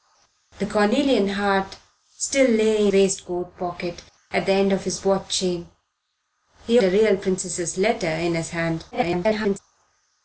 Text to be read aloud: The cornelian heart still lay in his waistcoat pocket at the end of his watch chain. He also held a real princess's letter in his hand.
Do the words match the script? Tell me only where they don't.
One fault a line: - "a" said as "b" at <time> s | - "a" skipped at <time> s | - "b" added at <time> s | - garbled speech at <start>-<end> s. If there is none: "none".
- "in his" skipped at 2.9 s
- "also held" skipped at 6.8 s
- garbled speech at 8.9-9.6 s